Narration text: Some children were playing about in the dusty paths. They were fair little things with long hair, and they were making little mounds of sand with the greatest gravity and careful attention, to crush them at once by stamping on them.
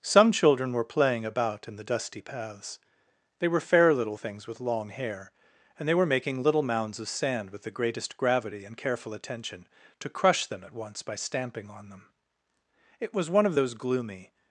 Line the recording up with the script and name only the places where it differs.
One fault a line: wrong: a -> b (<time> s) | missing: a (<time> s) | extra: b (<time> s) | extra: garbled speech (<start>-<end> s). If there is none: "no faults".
extra: It was one of those gloomy (13.0 s)